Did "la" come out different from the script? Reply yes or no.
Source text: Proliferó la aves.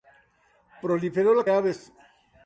no